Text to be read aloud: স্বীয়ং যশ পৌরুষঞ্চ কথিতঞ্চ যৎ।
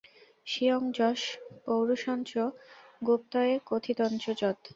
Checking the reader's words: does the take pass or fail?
fail